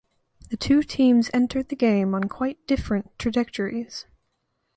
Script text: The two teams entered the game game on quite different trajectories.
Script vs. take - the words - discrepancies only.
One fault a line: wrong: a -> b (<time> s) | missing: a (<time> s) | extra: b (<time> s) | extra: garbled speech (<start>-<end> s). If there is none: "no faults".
missing: game (2.1 s)